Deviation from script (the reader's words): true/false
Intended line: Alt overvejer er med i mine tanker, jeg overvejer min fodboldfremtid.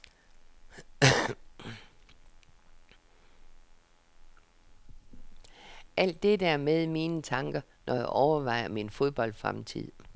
true